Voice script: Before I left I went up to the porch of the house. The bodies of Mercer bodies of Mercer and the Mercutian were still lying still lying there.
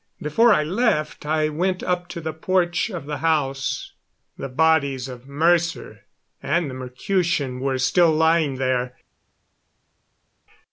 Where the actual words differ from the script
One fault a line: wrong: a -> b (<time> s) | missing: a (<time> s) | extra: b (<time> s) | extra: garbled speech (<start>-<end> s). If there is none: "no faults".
missing: bodies of Mercer (6.0 s)
missing: still lying (8.6 s)